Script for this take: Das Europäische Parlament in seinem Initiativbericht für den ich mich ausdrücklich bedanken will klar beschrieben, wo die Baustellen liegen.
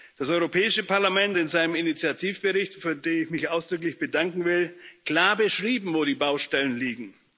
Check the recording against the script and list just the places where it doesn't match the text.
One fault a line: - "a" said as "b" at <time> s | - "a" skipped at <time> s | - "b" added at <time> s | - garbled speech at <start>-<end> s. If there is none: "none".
none